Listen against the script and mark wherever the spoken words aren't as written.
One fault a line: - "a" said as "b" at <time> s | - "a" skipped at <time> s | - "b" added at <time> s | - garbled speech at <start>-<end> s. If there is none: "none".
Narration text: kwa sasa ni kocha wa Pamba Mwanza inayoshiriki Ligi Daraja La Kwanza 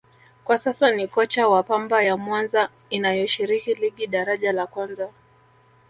- "ya" added at 2.0 s